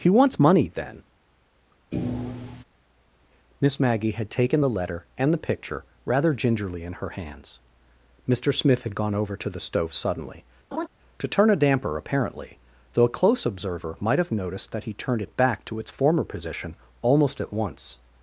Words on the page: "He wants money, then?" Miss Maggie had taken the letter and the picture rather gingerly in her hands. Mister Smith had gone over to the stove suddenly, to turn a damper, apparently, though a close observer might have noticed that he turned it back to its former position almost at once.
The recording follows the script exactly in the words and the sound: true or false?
false